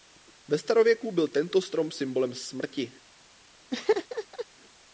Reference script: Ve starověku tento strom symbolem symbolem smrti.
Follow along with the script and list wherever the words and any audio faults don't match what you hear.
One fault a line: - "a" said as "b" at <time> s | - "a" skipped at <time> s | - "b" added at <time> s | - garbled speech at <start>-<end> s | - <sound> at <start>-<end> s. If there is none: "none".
- "byl" added at 1.1 s
- "symbolem" skipped at 2.3 s
- laugh at 3.7-4.5 s